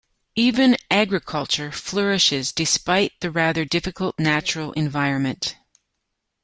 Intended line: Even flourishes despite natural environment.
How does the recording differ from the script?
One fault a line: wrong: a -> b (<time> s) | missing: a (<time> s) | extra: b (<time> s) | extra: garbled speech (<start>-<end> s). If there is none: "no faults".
extra: agriculture (0.9 s)
extra: the rather difficult (3.2 s)